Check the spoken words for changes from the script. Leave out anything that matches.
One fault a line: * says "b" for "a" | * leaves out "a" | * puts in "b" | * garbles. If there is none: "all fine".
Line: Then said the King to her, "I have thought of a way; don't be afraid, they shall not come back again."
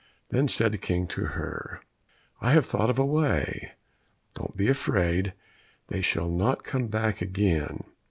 all fine